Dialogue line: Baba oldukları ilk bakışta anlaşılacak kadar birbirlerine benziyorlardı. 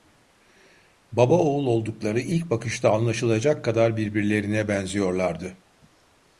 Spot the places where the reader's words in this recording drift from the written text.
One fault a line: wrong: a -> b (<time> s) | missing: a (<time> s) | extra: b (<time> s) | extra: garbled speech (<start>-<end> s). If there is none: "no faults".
extra: oğul (1.4 s)